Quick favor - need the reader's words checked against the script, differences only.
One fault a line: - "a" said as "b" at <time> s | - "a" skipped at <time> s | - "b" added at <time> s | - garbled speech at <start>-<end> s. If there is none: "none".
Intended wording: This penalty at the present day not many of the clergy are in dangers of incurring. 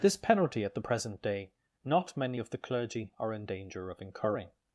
- "dangers" said as "danger" at 3.5 s